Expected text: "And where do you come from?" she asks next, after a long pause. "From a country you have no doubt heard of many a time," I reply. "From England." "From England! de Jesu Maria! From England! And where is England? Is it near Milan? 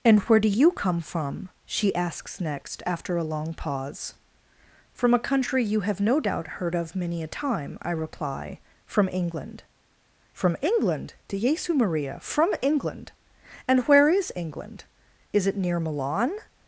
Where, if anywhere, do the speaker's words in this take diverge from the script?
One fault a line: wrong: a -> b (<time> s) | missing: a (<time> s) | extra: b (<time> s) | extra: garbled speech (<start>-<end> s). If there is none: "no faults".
no faults